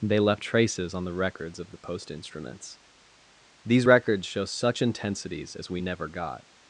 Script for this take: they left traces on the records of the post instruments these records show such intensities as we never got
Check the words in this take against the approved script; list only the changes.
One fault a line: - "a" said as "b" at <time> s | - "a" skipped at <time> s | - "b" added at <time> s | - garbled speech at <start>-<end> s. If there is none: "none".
none